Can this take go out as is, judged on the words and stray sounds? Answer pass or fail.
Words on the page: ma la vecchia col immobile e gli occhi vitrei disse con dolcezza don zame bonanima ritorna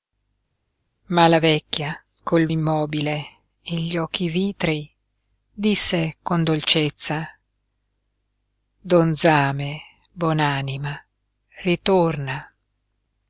pass